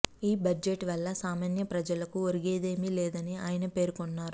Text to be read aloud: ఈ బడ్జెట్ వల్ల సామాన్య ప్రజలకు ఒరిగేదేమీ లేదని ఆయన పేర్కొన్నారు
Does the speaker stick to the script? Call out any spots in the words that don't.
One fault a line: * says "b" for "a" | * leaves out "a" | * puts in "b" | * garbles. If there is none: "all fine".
all fine